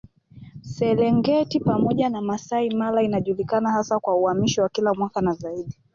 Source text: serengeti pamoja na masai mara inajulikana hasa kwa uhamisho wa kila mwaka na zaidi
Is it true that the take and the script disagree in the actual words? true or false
false